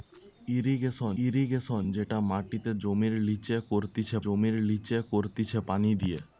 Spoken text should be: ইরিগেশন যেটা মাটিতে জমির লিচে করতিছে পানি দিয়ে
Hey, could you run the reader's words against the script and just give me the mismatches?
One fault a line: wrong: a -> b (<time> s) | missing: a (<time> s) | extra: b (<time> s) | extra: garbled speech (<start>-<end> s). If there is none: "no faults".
extra: ইরিগেশন (1.2 s)
extra: জমির লিচে করতিছে (4.2 s)